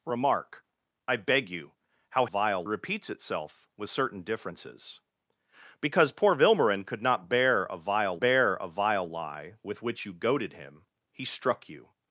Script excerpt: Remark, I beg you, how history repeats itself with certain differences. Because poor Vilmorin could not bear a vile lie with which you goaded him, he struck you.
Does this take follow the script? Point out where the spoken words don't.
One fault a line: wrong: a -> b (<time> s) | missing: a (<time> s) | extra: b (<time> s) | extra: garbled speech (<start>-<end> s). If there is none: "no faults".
wrong: history -> vile (2.2 s)
extra: bear a vile (8.2 s)